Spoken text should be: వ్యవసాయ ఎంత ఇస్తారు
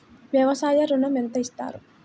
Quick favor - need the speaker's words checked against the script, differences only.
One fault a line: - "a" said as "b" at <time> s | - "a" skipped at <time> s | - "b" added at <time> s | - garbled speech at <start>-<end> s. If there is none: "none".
- "ఋణం" added at 0.8 s